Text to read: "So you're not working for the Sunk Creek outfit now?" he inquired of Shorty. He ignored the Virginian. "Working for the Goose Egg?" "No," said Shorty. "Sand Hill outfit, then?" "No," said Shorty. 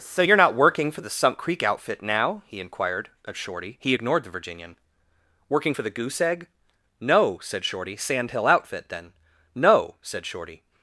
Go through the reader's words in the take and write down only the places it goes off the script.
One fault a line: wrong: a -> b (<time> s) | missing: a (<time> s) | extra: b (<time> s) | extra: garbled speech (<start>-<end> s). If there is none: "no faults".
no faults